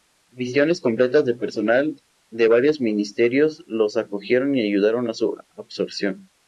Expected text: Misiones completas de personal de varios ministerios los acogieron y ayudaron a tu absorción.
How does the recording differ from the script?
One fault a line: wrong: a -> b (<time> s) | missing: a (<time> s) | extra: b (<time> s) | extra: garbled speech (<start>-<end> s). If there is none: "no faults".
wrong: tu -> su (5.1 s)